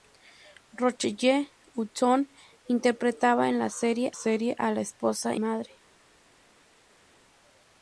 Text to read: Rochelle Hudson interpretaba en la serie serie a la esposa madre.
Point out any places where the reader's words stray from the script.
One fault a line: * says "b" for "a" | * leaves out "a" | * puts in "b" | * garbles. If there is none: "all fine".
all fine